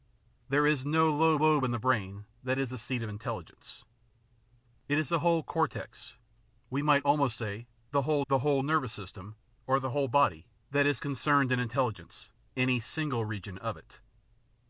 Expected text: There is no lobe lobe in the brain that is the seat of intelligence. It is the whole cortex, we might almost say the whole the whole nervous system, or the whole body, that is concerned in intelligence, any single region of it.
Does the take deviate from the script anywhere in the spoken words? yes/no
no